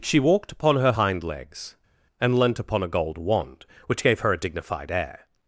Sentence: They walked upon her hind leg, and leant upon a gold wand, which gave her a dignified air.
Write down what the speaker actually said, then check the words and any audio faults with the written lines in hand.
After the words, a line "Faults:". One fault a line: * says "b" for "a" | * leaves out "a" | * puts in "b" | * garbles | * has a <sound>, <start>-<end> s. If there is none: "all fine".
She walked upon her hind legs, and leant upon a gold wand, which gave her a dignified air.
Faults:
* says "She" for "They"
* says "legs" for "leg"